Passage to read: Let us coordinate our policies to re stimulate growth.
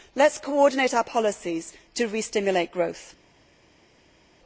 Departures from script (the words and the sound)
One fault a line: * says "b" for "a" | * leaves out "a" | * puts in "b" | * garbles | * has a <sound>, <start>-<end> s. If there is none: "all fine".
all fine